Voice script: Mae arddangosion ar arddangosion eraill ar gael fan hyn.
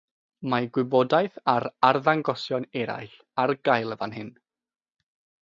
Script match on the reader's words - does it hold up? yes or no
no